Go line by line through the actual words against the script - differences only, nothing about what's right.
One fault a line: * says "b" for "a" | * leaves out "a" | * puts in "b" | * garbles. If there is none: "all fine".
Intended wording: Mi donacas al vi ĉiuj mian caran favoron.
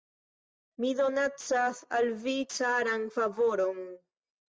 * leaves out "ĉiuj mian"